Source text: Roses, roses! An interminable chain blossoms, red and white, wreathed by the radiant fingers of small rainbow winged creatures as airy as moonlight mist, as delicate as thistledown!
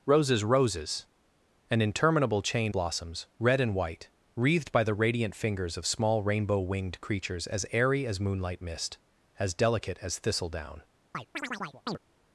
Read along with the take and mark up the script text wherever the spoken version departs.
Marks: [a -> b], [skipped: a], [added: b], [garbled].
Roses, roses! An interminable chain blossoms, red and white, wreathed by the radiant fingers of small rainbow winged creatures as airy as moonlight mist, as delicate as thistledown!